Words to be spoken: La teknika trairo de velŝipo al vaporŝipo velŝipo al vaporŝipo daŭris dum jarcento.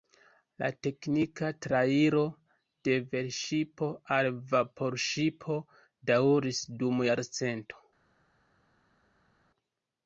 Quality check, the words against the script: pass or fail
fail